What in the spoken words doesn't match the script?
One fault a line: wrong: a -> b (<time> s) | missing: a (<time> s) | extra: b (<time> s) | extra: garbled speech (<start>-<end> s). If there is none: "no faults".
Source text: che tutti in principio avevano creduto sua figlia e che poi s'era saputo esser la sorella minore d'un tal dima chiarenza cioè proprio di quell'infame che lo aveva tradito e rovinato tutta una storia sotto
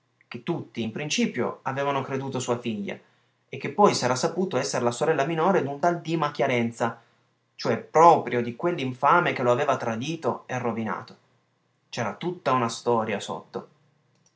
extra: c'era (11.9 s)